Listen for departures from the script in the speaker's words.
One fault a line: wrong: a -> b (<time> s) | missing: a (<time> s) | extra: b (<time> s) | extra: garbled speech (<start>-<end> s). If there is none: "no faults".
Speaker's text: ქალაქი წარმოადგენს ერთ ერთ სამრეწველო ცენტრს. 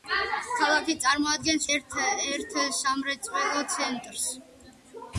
no faults